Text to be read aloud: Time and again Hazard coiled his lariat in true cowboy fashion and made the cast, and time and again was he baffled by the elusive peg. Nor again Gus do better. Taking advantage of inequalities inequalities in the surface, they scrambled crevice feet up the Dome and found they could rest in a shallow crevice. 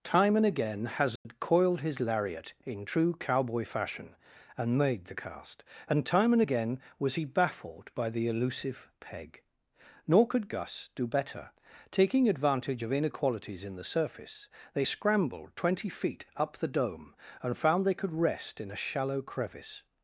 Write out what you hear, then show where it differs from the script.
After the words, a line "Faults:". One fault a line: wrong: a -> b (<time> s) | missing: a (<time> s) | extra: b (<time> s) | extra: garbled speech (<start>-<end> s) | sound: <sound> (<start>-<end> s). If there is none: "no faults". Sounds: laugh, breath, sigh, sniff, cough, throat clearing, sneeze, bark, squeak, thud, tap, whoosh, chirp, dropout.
Time and again Hazard coiled his lariat in true cowboy fashion and made the cast, and time and again was he baffled by the elusive peg. Nor could Gus do better. Taking advantage of inequalities in the surface, they scrambled twenty feet up the Dome and found they could rest in a shallow crevice.
Faults:
sound: dropout (1.2-1.3 s)
wrong: again -> could (10.3 s)
missing: inequalities (13.6 s)
wrong: crevice -> twenty (15.5 s)